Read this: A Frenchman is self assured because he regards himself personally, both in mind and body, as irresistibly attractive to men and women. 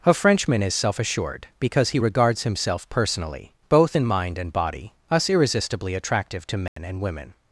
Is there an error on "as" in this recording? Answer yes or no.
yes